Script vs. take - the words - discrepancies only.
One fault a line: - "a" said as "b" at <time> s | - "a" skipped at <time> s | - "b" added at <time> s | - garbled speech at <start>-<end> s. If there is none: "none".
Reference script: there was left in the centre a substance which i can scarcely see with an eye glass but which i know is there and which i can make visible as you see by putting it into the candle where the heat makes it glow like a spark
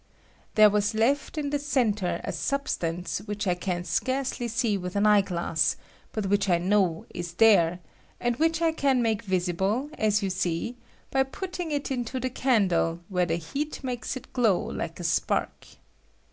none